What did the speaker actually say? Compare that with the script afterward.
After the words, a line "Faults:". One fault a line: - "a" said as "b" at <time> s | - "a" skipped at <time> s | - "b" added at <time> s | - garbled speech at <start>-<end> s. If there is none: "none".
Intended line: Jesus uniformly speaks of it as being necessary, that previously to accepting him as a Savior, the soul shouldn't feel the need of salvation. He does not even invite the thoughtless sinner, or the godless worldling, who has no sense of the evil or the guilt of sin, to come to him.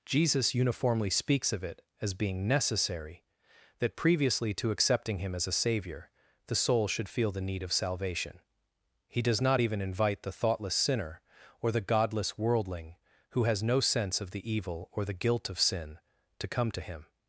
Jesus uniformly speaks of it as being necessary, that previously to accepting him as a Savior, the soul should feel the need of salvation. He does not even invite the thoughtless sinner, or the godless worldling, who has no sense of the evil or the guilt of sin, to come to him.
Faults:
- "shouldn't" said as "should" at 6.9 s